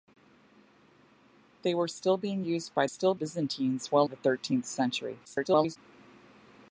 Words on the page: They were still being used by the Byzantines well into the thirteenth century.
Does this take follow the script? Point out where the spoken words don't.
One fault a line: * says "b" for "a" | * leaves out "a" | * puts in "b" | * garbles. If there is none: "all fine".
* says "still" for "the"
* leaves out "into"
* garbles